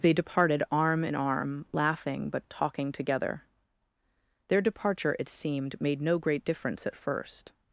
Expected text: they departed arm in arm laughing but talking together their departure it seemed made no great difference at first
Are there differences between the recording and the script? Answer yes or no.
no